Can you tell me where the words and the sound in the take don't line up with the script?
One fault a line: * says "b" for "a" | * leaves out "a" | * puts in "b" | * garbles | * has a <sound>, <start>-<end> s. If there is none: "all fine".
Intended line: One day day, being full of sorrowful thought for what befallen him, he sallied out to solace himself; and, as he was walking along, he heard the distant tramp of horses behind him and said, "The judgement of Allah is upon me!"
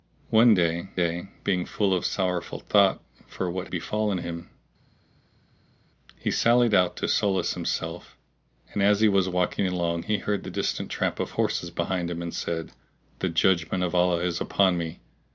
all fine